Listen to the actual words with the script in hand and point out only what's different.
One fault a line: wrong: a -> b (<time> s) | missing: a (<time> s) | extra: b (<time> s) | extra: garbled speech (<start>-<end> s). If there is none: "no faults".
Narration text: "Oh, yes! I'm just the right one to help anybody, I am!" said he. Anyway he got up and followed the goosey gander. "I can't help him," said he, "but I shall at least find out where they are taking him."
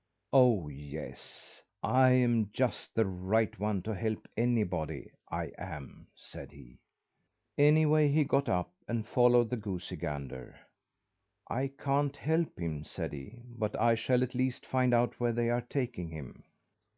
no faults